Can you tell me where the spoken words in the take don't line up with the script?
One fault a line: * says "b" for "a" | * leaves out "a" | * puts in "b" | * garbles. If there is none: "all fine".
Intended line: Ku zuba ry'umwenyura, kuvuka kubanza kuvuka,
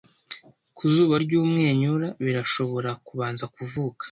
* says "birashobora" for "kuvuka"